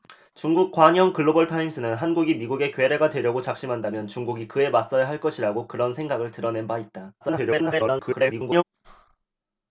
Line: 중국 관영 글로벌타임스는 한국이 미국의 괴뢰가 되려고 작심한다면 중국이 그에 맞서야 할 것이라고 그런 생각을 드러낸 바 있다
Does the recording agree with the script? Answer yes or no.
no